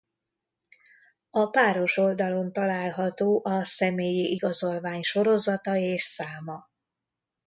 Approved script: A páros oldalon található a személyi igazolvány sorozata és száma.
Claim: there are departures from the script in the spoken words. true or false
false